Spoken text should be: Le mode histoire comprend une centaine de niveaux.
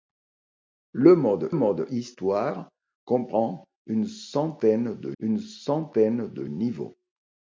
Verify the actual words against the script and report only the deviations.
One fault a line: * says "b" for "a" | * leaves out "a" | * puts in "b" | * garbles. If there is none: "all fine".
* puts in "mode"
* puts in "une centaine de"